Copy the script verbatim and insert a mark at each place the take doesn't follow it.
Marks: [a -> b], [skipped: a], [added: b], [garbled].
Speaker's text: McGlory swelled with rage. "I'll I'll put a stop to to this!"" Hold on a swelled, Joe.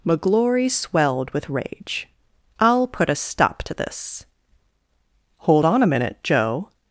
McGlory swelled with rage. "I'll [skipped: I'll] put a stop to [skipped: to] this!"" Hold on a [swelled, -> minute] Joe.